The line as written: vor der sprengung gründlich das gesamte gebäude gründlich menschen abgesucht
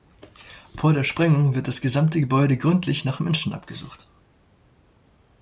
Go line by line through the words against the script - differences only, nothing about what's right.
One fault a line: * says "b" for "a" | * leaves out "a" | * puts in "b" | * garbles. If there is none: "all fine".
* says "wird" for "gründlich"
* puts in "nach"